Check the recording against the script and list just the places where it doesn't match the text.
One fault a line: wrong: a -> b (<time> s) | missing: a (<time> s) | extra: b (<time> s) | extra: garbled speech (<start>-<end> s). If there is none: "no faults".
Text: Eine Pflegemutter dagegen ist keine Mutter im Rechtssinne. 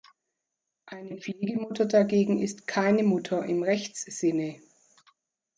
no faults